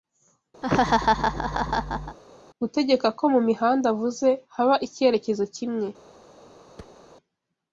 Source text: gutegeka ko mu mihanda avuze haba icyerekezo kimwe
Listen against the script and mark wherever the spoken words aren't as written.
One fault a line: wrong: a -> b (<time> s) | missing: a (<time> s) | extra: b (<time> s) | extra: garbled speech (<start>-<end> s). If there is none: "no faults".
no faults